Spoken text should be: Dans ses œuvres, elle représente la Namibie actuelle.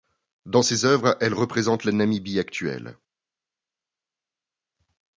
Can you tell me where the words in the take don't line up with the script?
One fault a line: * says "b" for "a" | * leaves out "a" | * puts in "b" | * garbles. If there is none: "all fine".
all fine